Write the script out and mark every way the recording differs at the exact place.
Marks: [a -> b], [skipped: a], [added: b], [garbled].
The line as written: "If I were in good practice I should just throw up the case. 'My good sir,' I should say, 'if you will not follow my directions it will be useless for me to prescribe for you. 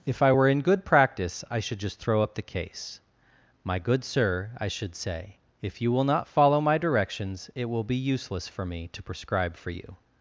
"If I were in good practice I should just throw up the case. 'My good sir,' I should say, 'if you will not follow my directions it will be useless for me to prescribe for you.